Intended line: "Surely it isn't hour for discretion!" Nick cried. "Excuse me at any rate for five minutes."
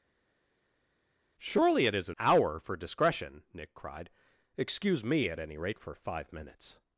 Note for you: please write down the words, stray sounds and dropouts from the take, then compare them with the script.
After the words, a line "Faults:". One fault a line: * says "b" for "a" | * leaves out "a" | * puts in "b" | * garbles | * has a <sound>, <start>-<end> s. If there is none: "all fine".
"Surely it isn't hour for discretion!" Nick cried. "Excuse me at any rate for five minutes."
Faults:
all fine